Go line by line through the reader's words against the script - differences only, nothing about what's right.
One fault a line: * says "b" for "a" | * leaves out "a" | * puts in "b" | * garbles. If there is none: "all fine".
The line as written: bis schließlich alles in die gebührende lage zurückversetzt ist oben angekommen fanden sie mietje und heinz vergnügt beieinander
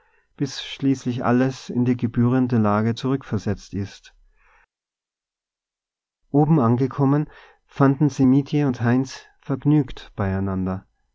all fine